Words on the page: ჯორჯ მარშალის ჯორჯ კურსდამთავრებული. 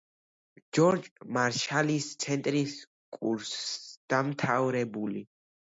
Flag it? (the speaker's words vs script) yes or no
yes